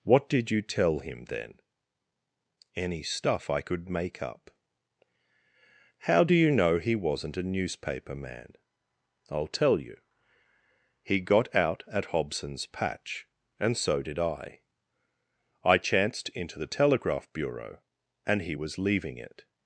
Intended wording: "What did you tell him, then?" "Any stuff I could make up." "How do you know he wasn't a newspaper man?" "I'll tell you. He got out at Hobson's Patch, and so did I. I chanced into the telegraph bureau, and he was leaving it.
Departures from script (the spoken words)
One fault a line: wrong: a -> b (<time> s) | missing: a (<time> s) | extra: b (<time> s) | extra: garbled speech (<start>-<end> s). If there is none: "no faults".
no faults